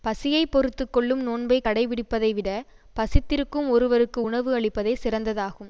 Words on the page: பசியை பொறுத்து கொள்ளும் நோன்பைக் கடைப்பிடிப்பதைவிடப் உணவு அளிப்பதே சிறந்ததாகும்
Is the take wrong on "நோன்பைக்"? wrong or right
right